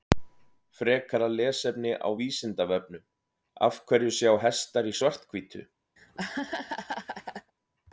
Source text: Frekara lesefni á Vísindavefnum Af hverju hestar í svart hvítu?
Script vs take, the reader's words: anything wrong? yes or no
yes